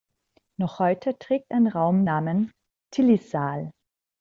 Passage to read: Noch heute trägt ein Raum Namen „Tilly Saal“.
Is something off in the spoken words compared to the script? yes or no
no